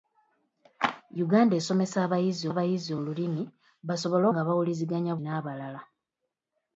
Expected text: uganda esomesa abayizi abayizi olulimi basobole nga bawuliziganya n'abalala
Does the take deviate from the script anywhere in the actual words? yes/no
no